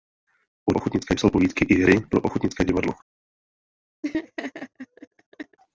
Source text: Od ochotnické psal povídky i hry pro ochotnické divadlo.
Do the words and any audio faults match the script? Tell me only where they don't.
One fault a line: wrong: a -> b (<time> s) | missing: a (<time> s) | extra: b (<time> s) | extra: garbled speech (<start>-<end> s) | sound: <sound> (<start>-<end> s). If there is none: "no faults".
sound: laugh (4.0-5.6 s)